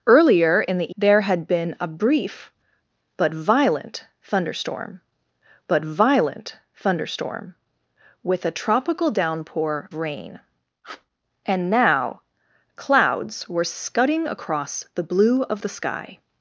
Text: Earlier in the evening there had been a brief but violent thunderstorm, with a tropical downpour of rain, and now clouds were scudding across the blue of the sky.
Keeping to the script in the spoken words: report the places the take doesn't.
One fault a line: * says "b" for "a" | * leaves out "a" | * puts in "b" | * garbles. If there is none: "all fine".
* leaves out "evening"
* puts in "but violent thunderstorm"
* leaves out "of"